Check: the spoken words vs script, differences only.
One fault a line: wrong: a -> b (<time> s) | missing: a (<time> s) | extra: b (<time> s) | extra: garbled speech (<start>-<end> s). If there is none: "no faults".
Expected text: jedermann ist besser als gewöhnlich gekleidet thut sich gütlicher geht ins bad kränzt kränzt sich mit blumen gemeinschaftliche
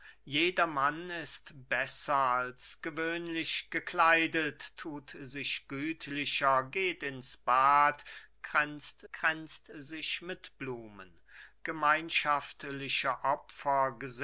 no faults